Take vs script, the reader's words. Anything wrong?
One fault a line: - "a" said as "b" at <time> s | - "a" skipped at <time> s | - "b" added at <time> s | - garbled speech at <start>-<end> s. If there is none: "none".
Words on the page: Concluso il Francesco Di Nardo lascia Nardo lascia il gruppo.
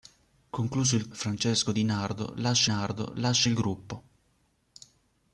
none